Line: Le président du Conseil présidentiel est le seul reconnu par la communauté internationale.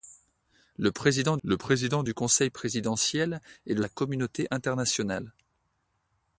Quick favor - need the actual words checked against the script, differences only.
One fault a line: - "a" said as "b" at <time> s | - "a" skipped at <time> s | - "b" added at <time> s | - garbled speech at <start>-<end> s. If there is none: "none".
- "le président" added at 1.4 s
- "seul reconnu par" skipped at 3.9 s